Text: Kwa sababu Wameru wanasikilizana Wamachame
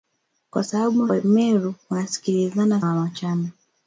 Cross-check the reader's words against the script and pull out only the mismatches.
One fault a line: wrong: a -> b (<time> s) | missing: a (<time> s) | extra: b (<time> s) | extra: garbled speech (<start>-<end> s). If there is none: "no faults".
no faults